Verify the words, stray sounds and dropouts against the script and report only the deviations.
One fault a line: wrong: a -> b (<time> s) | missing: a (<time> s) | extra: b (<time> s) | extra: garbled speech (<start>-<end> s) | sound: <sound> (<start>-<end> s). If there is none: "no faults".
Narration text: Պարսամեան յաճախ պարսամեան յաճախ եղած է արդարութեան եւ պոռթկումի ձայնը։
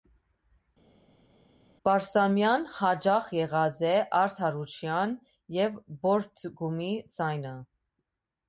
missing: պարսամեան յաճախ (3.3 s)